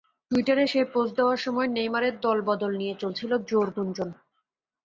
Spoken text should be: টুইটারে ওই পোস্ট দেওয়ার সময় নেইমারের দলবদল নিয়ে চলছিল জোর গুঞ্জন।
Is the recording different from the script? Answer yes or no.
yes